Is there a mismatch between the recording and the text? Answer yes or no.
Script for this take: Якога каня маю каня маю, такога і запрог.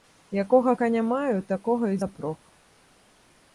yes